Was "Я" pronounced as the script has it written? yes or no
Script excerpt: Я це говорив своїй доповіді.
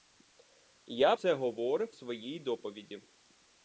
yes